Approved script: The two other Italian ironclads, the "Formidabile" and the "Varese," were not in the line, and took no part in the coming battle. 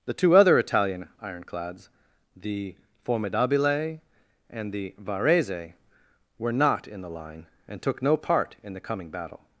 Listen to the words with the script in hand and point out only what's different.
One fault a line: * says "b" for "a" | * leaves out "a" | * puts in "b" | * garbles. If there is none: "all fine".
all fine